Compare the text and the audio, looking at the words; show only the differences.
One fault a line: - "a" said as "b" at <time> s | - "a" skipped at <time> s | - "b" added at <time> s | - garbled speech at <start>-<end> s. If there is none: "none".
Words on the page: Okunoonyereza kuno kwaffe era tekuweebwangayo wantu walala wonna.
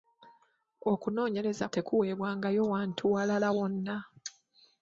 - "kuno kwaffe era" skipped at 1.6 s